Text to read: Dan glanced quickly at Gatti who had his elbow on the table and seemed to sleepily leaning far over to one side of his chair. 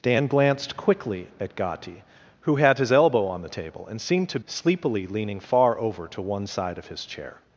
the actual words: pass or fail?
pass